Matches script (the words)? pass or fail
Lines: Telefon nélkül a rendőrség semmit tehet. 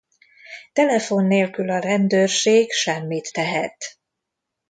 pass